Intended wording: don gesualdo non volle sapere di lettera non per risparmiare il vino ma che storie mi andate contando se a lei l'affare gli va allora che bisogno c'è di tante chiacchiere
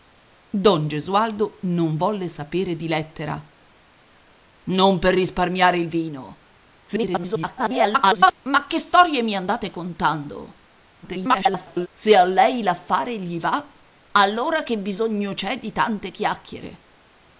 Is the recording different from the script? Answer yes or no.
yes